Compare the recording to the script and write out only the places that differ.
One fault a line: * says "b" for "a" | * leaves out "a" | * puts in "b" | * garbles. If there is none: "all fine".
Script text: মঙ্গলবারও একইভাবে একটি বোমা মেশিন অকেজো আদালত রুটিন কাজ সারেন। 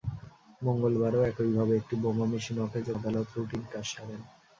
all fine